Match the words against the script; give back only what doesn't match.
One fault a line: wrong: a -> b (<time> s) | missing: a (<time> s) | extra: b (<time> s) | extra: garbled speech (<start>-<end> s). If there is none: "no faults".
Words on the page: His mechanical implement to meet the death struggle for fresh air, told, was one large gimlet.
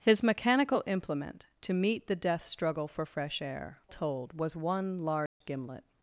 no faults